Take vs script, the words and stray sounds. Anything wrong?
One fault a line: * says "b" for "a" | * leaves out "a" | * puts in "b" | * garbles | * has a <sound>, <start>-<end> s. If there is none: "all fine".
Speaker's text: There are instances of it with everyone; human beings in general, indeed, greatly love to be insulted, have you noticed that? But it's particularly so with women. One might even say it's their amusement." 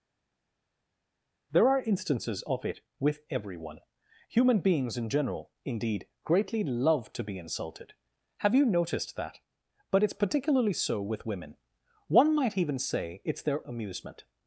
all fine